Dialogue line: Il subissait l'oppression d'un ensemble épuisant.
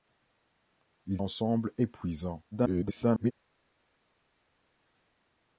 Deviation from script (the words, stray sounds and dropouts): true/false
true